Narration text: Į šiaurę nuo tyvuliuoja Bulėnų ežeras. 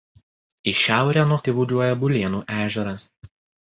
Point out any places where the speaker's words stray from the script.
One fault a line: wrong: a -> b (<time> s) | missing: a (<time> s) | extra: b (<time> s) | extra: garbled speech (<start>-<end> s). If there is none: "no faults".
no faults